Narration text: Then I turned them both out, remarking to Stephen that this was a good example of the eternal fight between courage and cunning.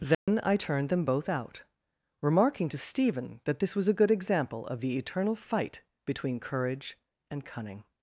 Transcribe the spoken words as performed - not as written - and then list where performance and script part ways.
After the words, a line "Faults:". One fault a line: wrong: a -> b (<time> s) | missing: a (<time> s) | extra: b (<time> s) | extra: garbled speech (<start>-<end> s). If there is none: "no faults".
Then I turned them both out, remarking to Stephen that this was a good example of the eternal fight between courage and cunning.
Faults:
no faults